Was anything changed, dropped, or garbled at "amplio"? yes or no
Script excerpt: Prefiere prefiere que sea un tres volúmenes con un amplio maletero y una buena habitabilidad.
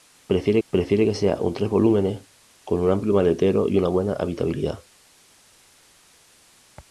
no